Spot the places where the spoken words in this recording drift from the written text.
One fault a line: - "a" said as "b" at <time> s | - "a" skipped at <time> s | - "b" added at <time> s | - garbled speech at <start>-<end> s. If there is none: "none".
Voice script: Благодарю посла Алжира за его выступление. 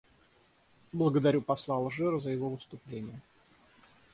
none